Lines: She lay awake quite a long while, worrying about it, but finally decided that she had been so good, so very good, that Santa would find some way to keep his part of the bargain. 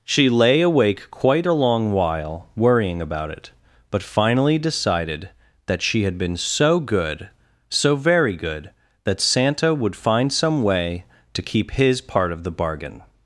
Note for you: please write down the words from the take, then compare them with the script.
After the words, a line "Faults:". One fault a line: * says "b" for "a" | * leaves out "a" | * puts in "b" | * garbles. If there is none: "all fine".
She lay awake quite a long while, worrying about it, but finally decided that she had been so good, so very good, that Santa would find some way to keep his part of the bargain.
Faults:
all fine